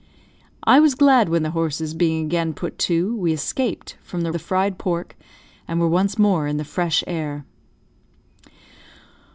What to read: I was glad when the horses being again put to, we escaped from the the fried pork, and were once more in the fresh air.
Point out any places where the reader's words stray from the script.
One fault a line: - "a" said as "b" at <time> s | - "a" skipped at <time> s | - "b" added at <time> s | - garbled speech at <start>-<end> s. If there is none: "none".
none